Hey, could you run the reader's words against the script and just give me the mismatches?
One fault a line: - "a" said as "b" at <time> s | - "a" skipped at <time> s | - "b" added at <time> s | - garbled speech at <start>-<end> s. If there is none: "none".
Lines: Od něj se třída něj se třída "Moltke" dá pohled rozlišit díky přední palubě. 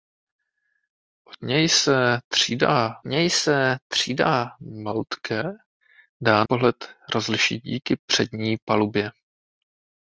none